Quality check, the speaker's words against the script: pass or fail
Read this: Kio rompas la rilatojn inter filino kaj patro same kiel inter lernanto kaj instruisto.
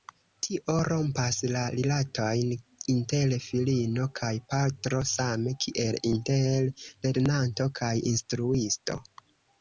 fail